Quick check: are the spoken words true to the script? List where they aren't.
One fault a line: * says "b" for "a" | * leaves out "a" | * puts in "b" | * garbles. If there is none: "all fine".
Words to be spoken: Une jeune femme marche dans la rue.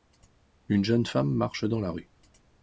all fine